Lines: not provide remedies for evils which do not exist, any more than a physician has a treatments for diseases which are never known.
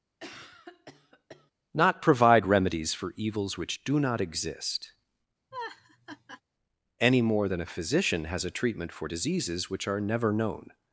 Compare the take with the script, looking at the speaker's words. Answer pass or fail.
fail